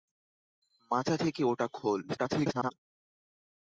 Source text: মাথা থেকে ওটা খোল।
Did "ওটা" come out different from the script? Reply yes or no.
no